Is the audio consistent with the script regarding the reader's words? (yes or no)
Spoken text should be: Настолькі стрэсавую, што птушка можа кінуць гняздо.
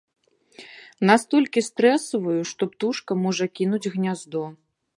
yes